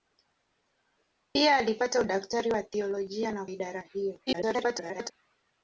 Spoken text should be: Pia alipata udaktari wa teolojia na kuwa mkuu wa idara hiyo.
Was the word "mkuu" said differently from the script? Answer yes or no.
yes